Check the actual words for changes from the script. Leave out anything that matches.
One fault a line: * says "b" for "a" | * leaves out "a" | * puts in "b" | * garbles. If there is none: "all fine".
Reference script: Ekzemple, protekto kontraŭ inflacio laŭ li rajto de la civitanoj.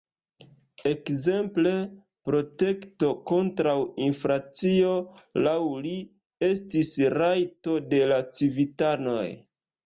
* puts in "estis"